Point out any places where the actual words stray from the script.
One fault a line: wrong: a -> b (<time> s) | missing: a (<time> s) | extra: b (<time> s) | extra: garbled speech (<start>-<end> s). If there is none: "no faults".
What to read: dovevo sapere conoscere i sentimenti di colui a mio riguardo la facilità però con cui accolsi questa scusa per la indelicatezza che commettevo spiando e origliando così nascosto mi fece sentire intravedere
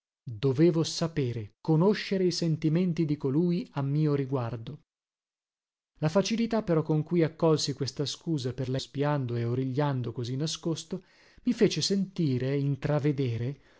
missing: indelicatezza che commettevo (8.8 s)